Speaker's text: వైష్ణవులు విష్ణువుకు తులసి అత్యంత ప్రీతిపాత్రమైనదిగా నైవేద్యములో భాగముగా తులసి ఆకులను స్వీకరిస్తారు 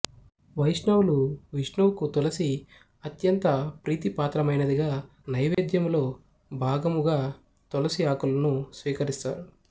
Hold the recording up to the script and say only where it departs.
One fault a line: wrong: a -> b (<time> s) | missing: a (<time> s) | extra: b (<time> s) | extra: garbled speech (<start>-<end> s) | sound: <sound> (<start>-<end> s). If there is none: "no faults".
sound: dropout (5.5-5.6 s)